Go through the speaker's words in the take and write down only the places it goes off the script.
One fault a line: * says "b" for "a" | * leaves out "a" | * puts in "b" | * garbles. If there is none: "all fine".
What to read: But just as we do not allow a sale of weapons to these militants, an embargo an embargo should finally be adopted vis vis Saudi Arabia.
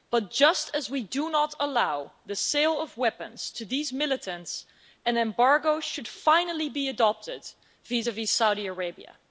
* says "the" for "a"
* leaves out "an embargo"